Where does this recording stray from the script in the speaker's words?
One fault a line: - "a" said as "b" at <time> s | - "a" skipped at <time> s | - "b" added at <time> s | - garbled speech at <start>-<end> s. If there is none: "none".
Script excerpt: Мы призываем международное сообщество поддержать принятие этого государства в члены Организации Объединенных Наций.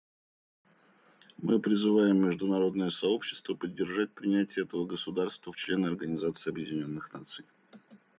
none